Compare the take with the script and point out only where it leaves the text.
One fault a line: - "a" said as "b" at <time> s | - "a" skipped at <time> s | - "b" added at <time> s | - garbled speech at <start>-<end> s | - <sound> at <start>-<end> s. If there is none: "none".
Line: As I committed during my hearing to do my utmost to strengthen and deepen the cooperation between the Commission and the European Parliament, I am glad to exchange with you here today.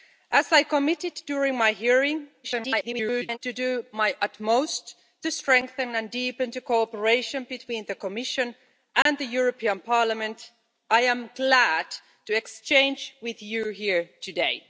- garbled speech at 2.4-3.4 s
- dropout at 9.0-9.1 s